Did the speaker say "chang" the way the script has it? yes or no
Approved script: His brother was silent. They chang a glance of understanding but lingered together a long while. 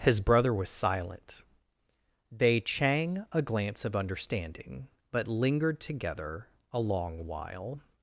yes